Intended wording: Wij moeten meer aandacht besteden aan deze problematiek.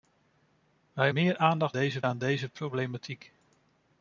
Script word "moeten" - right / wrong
wrong